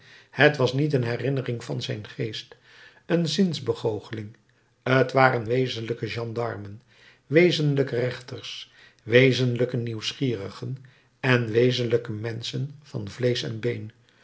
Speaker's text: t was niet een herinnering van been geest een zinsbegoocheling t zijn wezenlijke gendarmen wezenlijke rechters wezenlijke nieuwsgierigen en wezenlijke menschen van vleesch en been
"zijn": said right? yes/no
no